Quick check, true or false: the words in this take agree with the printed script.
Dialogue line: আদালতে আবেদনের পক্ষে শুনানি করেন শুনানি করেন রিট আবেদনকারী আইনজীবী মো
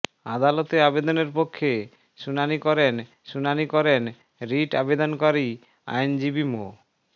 true